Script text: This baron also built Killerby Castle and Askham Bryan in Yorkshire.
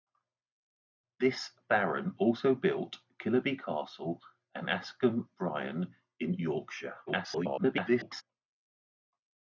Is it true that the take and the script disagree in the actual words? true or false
true